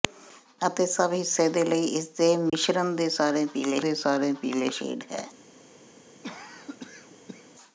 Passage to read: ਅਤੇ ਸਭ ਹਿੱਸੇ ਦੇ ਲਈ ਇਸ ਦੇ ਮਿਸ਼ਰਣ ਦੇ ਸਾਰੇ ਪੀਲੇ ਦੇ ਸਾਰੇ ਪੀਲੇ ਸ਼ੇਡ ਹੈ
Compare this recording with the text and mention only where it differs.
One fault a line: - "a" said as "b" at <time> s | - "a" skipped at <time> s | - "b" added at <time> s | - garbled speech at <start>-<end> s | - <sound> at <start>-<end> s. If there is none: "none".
- dropout at 2.5-2.5 s
- cough at 6.2-7.5 s